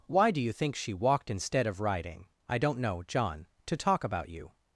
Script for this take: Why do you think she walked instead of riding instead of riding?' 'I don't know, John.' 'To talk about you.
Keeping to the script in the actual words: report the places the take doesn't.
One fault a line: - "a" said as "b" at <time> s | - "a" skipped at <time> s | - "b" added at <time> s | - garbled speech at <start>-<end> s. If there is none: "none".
- "instead of riding" skipped at 2.2 s